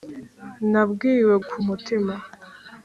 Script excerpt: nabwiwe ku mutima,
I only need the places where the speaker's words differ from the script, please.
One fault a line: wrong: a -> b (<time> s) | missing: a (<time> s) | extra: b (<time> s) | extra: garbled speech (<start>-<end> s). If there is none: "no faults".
no faults